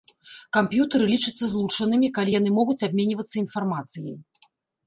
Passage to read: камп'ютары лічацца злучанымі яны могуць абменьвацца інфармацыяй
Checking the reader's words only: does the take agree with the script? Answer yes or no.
no